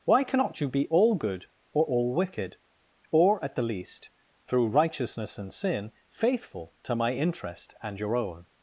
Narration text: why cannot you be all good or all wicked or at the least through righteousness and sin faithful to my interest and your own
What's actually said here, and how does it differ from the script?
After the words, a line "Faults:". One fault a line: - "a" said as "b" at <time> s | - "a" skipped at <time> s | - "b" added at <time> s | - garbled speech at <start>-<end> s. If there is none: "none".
why cannot you be all good or all wicked or at the least through righteousness and sin faithful to my interest and your own
Faults:
none